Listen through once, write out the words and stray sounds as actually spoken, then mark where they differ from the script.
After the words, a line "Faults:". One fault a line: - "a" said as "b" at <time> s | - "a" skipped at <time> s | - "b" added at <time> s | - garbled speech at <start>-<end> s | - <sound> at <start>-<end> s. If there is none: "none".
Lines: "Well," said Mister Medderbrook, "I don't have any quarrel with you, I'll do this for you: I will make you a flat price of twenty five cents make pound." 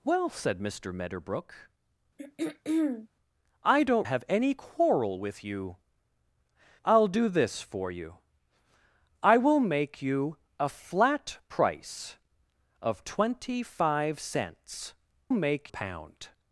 "Well," said Mister Medderbrook, "I don't have any quarrel with you, I'll do this for you: I will make you a flat price of twenty five cents make pound."
Faults:
- throat clearing at 2.2-3.1 s